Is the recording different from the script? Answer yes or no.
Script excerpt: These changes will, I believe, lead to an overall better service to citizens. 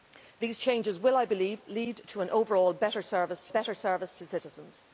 yes